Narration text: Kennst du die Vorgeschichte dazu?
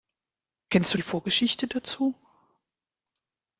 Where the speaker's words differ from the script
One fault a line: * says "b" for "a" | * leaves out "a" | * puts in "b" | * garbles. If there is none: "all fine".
all fine